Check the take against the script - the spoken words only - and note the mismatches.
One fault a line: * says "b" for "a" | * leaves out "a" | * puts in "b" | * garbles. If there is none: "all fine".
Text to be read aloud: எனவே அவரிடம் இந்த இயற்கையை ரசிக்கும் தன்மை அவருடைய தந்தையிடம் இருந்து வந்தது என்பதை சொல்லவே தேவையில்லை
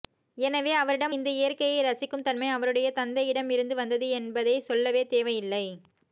all fine